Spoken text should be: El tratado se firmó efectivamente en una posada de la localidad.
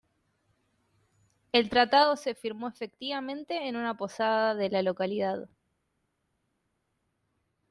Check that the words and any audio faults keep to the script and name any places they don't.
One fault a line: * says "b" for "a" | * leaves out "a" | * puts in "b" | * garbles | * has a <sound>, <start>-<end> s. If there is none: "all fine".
all fine